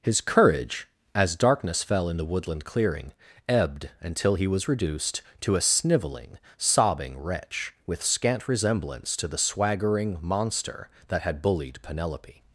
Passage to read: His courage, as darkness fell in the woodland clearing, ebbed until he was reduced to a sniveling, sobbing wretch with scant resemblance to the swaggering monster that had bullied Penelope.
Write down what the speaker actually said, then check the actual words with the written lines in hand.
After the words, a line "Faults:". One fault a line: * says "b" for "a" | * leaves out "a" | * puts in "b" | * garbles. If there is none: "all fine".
His courage, as darkness fell in the woodland clearing, ebbed until he was reduced to a sniveling, sobbing wretch with scant resemblance to the swaggering monster that had bullied Penelope.
Faults:
all fine